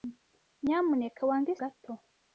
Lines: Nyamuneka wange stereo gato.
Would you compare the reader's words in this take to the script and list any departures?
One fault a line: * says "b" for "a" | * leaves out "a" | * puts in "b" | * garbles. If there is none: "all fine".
* leaves out "stereo"